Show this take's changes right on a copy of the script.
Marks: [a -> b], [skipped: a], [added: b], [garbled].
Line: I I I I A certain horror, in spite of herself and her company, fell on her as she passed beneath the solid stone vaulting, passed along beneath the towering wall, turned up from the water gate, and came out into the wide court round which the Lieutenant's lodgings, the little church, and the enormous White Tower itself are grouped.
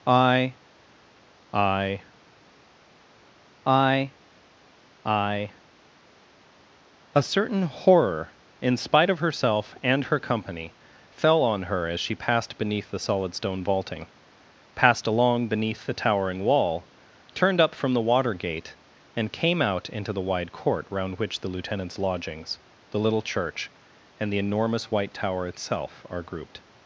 I I I I A certain horror, in spite of herself and her company, fell on her as she passed beneath the solid stone vaulting, passed along beneath the towering wall, turned up from the water gate, and came out into the wide court round which the Lieutenant's lodgings, the little church, and the enormous White Tower itself are grouped.